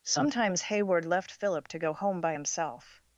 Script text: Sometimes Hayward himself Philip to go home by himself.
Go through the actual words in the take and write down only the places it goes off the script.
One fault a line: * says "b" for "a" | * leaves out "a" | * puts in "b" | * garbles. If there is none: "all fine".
* says "left" for "himself"